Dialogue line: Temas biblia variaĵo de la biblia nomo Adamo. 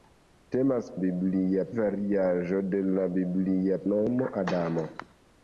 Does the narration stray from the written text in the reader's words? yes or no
no